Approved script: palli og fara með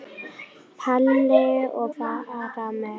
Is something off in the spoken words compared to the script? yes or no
no